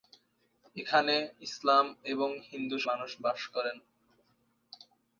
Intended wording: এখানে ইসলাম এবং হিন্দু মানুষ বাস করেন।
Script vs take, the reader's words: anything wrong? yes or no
no